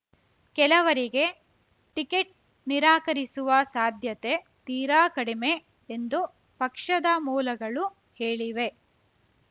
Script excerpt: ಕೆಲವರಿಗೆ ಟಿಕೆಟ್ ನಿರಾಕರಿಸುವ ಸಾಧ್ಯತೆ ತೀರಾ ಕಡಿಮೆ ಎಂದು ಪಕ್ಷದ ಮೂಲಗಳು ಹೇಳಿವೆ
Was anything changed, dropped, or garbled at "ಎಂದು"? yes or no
no